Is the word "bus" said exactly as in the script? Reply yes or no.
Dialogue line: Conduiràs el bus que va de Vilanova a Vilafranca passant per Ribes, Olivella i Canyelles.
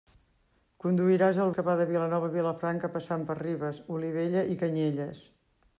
no